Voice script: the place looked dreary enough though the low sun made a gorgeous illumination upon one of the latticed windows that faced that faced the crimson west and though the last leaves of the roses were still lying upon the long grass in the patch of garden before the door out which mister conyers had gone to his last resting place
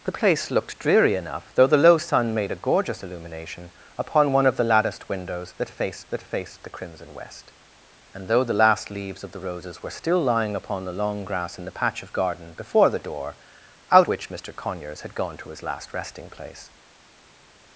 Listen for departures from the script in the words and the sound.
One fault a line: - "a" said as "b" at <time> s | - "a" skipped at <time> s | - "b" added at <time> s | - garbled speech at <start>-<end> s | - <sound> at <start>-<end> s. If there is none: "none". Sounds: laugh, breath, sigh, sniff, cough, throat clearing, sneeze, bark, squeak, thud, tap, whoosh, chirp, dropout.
none